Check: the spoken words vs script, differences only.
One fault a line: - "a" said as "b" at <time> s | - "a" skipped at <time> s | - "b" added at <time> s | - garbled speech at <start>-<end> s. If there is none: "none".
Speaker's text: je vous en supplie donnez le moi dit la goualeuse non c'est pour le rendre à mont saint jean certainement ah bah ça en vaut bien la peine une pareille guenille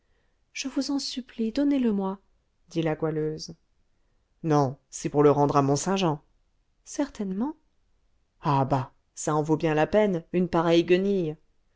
none